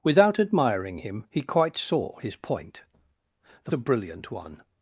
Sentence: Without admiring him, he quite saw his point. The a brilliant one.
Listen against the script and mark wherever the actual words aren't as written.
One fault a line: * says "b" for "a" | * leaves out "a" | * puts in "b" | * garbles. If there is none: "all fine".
all fine